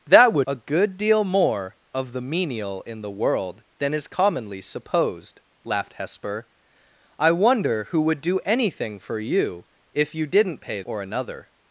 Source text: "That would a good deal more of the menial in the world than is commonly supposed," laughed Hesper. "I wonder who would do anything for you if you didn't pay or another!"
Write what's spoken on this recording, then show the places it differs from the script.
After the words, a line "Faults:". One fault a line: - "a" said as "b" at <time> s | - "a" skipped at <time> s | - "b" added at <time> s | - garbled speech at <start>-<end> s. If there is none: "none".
"That would a good deal more of the menial in the world than is commonly supposed," laughed Hesper. "I wonder who would do anything for you if you didn't pay or another!"
Faults:
none